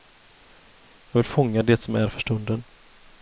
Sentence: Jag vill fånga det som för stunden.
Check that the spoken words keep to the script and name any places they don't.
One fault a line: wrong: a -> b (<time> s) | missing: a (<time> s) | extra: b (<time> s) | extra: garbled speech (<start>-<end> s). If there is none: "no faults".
extra: är (1.9 s)